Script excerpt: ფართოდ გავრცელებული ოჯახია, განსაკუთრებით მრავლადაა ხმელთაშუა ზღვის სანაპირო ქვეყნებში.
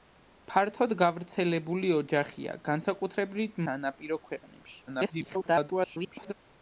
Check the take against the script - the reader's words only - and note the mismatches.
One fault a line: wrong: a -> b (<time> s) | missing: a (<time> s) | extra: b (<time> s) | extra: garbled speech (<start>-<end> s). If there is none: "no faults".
missing: მრავლადაა ხმელთაშუა ზღვის (3.6 s)
extra: garbled speech (4.9-6.3 s)